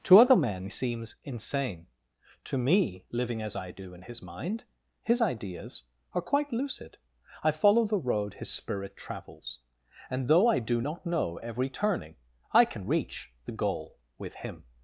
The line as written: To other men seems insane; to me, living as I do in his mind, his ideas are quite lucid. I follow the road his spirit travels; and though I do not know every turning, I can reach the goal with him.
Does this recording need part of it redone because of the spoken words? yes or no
no